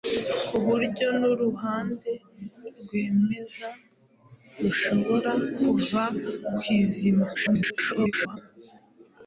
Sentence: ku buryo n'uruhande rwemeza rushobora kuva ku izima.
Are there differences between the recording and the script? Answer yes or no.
yes